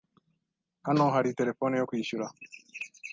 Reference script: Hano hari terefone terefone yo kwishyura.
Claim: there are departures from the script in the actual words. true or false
true